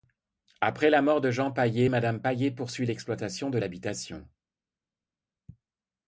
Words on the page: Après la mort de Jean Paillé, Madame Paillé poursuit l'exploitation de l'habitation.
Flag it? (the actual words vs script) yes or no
no